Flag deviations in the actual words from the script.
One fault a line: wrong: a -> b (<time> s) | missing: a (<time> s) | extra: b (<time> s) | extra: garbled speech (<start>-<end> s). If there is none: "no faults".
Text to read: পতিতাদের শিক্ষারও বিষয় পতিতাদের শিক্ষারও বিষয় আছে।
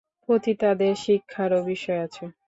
missing: পতিতাদের শিক্ষারও বিষয় (2.0 s)